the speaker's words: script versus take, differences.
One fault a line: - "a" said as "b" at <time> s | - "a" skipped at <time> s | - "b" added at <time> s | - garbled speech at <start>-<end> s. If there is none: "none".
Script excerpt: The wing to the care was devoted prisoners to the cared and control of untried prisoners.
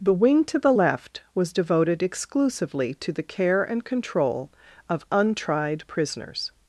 - "care" said as "left" at 0.7 s
- "prisoners" said as "exclusively" at 2.0 s
- "cared" said as "care" at 3.2 s